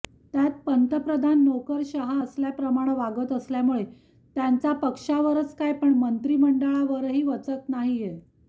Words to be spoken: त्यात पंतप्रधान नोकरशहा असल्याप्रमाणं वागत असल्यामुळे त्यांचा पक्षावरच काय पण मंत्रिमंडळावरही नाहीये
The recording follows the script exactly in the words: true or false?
false